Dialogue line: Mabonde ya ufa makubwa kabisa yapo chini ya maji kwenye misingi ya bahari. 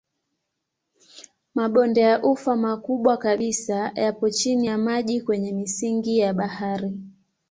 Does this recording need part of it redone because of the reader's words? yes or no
no